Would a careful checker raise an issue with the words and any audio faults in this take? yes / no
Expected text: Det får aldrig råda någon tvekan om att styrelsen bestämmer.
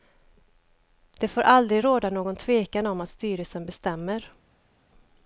no